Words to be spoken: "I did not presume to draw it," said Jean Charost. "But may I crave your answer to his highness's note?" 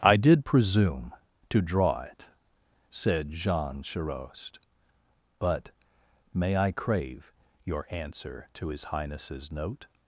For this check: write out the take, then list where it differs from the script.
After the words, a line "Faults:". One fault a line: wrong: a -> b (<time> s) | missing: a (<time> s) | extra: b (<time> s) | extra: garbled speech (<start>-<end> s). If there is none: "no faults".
"I did presume to draw it," said Jean Charost. "But may I crave your answer to his highness's note?"
Faults:
missing: not (0.5 s)